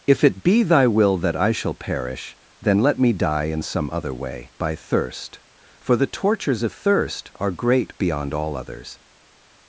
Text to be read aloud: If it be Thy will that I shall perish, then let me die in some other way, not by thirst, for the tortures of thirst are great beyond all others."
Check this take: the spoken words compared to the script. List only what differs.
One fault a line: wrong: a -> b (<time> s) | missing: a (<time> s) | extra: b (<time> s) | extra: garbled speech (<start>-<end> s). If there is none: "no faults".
missing: not (4.5 s)